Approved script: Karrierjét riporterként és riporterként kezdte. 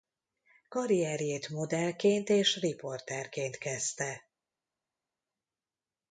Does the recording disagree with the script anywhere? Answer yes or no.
yes